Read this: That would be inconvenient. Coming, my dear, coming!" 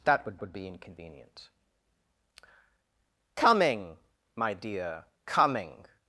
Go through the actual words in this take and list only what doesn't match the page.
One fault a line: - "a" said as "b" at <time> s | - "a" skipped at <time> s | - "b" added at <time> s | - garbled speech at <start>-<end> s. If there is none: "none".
- "would" added at 0.4 s